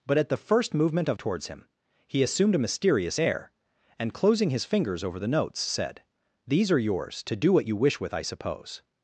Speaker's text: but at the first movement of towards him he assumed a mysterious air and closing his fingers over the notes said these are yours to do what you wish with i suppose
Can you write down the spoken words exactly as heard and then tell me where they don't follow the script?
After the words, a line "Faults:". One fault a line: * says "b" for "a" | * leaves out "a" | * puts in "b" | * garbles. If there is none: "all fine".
but at the first movement of towards him he assumed a mysterious air and closing his fingers over the notes said these are yours to do what you wish with i suppose
Faults:
all fine